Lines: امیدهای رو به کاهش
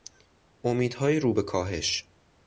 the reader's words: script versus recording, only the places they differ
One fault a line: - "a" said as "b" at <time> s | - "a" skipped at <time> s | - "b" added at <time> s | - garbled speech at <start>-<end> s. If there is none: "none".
none